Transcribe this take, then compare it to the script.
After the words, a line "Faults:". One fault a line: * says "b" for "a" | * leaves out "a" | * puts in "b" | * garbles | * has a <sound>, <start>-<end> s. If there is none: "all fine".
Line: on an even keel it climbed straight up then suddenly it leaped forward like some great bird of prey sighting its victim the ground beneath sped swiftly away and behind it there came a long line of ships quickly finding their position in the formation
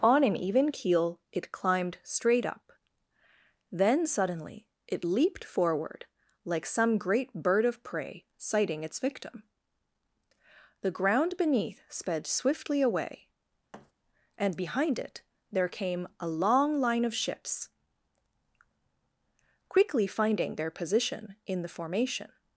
on an even keel it climbed straight up then suddenly it leaped forward like some great bird of prey sighting its victim the ground beneath sped swiftly away and behind it there came a long line of ships quickly finding their position in the formation
Faults:
* has a thud, 13.7-13.9 s